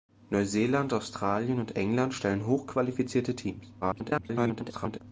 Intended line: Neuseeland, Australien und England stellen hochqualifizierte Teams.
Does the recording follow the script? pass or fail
fail